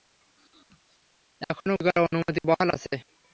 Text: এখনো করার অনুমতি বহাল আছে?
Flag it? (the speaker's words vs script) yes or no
no